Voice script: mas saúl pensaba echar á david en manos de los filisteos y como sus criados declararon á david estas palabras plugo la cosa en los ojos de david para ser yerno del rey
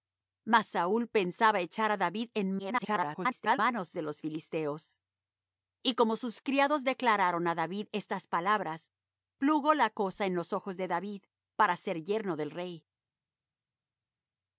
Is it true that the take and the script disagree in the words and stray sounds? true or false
true